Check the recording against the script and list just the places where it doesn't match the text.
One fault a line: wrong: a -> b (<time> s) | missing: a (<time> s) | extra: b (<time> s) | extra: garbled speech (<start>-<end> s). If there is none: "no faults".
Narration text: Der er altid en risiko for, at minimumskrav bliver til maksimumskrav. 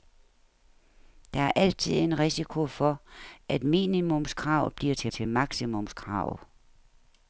extra: til (5.1 s)